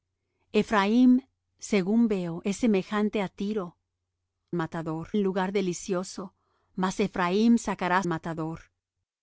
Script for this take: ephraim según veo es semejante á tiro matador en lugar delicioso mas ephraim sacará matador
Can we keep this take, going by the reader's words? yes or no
yes